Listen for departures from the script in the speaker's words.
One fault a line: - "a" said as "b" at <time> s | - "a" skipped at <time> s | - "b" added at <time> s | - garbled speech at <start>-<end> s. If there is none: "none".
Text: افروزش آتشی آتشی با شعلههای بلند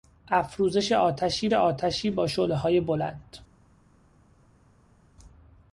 none